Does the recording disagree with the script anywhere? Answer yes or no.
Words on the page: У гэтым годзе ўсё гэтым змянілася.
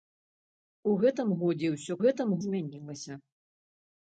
no